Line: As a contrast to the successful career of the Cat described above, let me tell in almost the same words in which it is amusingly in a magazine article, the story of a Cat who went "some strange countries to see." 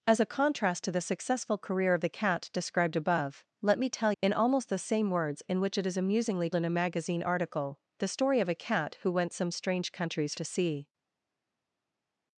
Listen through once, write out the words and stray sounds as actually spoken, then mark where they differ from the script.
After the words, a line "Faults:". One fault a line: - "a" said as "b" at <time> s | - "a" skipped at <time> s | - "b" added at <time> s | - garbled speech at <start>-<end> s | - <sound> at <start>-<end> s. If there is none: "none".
As a contrast to the successful career of the Cat described above, let me tell in almost the same words in which it is amusingly in a magazine article, the story of a Cat who went "some strange countries to see."
Faults:
none